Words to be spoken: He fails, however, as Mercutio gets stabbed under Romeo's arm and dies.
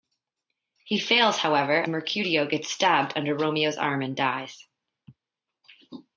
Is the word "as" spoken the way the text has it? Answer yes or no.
no